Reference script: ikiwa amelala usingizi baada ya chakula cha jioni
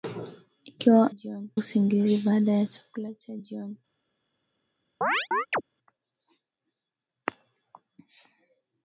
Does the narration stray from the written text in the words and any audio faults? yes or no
yes